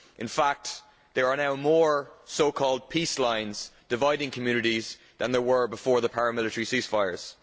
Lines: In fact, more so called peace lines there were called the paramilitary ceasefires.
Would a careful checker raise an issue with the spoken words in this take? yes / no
yes